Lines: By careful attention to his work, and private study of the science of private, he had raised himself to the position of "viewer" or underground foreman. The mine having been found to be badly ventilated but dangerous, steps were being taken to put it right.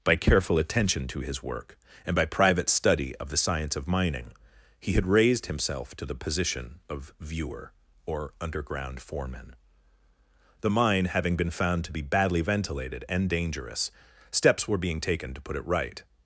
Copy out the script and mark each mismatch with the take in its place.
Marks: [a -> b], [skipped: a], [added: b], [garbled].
By careful attention to his work, and [added: by] private study of the science of [private, -> mining] he had raised himself to the position of "viewer" or underground foreman. The mine having been found to be badly ventilated [but -> and] dangerous, steps were being taken to put it right.